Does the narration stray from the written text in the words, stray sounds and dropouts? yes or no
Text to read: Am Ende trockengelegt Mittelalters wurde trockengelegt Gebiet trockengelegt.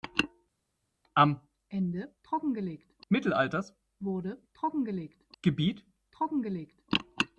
no